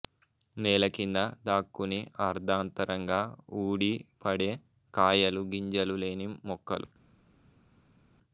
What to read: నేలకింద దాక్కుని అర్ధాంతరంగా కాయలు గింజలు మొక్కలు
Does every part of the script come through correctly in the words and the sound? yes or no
no